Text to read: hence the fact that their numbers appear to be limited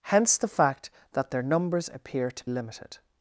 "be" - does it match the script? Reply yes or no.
no